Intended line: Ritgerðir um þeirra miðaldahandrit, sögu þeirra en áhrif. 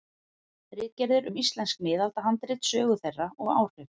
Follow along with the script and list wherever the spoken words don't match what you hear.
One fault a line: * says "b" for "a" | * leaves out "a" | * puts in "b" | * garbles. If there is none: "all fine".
* says "íslensk" for "þeirra"
* says "og" for "en"